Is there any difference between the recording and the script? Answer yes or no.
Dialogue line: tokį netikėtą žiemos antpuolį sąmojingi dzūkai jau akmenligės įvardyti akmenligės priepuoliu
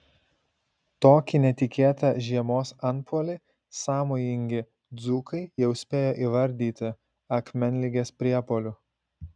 yes